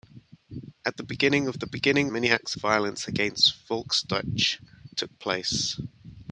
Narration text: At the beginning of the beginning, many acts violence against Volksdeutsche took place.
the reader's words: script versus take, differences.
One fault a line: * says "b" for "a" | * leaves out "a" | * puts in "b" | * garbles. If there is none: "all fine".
all fine